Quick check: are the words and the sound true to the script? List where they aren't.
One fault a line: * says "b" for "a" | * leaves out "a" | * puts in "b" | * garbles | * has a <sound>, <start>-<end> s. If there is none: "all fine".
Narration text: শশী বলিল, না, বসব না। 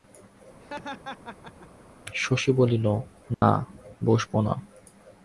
* has a laugh, 0.6-1.9 s
* has a dropout, 3.3-3.4 s